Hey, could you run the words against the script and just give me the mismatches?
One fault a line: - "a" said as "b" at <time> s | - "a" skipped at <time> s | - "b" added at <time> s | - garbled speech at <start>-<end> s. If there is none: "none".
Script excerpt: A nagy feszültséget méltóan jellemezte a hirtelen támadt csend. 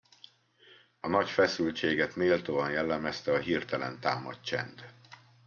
none